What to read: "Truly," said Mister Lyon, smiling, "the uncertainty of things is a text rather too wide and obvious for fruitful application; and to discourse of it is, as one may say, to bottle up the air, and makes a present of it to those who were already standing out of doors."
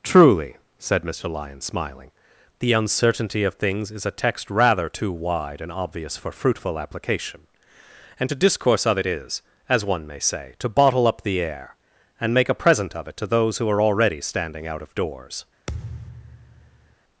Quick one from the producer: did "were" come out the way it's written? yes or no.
no